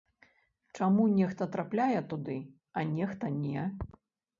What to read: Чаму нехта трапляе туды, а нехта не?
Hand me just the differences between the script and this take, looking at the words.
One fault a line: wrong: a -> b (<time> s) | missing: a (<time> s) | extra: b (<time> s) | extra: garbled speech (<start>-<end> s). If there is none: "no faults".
no faults